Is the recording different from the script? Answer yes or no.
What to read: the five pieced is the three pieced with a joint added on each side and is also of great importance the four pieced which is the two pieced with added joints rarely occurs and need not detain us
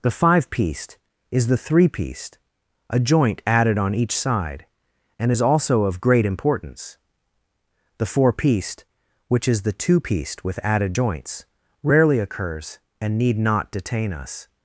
yes